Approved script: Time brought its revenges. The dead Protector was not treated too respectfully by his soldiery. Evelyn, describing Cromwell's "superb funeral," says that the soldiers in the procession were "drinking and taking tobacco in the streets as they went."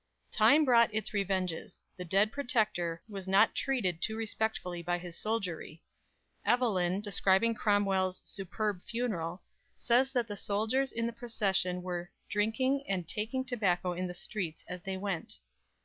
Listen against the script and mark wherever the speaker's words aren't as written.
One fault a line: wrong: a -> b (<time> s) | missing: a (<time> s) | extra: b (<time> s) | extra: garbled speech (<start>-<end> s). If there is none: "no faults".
no faults